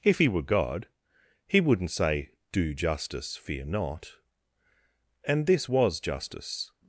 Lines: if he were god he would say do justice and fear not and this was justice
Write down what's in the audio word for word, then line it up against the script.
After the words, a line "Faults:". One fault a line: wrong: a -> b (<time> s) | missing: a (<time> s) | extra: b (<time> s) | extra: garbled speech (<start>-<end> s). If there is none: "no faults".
if he were god he wouldn't say do justice fear not and this was justice
Faults:
wrong: would -> wouldn't (1.6 s)
missing: and (3.4 s)